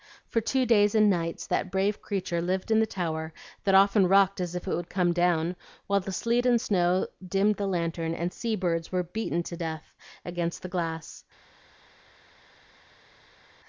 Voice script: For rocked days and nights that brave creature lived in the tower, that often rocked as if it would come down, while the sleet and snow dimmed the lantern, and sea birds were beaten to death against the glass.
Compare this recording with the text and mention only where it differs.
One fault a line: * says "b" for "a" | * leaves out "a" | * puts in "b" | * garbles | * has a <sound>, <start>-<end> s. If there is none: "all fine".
* says "two" for "rocked"